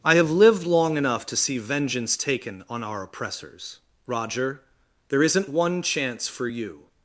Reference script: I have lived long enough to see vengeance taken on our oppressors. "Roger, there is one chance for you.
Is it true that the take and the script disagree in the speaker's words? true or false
true